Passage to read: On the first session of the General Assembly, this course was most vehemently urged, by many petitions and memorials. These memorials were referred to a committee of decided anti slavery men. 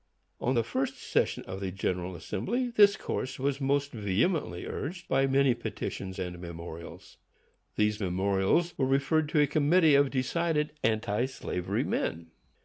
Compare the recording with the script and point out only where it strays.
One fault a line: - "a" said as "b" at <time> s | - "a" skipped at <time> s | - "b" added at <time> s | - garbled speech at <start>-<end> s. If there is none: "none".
none